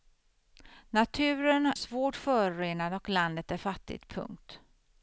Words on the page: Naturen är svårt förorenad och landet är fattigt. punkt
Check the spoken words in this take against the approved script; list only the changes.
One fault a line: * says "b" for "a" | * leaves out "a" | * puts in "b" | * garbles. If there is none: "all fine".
* leaves out "är"